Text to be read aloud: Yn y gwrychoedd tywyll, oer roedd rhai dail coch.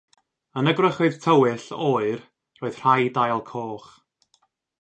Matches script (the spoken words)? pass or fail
pass